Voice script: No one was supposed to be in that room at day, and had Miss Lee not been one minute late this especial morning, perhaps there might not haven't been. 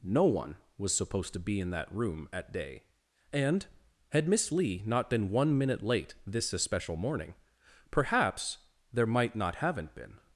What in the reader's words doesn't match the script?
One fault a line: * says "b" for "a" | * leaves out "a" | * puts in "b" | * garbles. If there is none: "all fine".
all fine